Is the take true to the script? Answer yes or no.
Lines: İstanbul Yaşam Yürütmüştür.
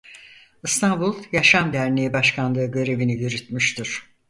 no